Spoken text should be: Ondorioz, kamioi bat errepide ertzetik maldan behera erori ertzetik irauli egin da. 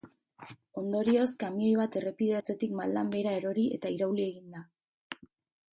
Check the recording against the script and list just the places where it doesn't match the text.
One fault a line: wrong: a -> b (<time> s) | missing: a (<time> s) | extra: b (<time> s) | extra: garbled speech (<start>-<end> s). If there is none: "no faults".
wrong: ertzetik -> eta (3.8 s)